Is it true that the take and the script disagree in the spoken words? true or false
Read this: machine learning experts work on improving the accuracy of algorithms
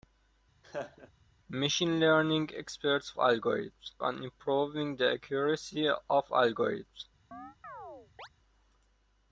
true